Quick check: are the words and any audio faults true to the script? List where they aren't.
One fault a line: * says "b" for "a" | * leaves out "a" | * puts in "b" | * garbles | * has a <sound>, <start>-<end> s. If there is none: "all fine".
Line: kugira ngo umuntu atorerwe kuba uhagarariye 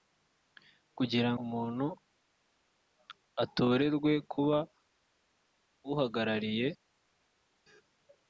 * leaves out "ngo"